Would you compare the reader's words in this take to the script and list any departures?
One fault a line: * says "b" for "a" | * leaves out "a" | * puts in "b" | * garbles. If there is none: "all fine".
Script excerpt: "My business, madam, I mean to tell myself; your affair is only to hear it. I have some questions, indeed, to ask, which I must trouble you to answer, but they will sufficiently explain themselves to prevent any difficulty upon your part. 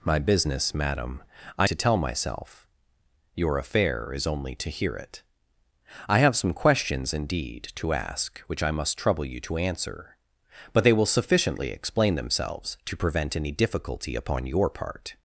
* leaves out "mean"